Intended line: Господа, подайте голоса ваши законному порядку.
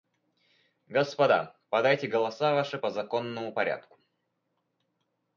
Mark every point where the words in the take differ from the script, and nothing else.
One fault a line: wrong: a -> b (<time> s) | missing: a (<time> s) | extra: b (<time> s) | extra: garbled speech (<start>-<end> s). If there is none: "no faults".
extra: по (2.8 s)